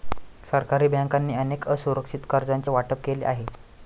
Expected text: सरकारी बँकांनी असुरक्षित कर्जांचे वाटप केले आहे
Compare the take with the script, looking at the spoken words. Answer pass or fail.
fail